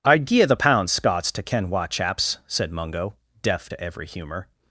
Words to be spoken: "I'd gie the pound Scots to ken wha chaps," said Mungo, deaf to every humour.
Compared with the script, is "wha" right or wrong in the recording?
right